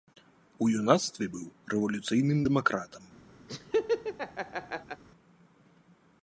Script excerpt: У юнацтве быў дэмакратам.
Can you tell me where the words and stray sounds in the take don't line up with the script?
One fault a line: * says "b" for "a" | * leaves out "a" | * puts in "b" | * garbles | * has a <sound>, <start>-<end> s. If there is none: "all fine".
* puts in "рэвалюцыйным"
* has a laugh, 3.5-5.0 s